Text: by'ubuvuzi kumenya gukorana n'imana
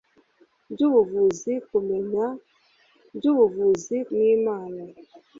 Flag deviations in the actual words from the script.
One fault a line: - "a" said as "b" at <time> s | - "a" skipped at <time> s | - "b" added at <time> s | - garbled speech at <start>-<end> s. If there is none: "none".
- "gukorana" said as "by'ubuvuzi" at 3.2 s